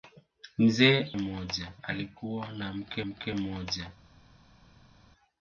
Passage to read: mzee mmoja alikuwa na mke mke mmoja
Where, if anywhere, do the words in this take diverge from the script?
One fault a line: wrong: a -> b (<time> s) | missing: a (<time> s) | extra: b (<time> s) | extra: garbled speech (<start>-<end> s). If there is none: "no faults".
no faults